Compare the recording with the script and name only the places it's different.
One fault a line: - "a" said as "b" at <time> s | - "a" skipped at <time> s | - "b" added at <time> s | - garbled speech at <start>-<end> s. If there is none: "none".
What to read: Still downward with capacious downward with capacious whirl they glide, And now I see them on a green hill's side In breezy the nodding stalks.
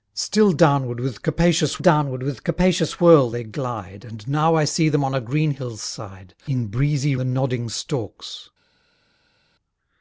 none